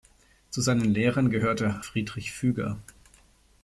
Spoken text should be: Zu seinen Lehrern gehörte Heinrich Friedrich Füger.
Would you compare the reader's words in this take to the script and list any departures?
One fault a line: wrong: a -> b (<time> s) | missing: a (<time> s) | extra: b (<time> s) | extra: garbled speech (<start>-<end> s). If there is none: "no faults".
missing: Heinrich (1.9 s)